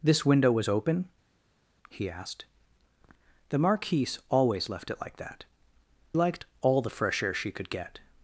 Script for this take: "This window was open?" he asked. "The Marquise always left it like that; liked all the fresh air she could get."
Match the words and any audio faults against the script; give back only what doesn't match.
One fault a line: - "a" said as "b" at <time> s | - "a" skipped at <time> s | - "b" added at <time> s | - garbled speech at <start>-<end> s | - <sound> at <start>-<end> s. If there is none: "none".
none